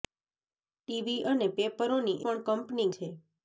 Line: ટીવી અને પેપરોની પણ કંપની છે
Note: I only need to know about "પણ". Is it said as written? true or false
true